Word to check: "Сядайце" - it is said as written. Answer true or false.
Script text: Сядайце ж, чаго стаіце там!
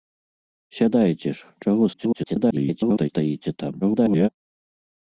true